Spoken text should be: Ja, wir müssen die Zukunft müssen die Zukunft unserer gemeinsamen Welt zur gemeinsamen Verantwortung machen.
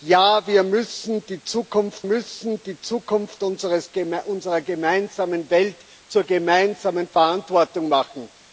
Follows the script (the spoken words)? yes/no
yes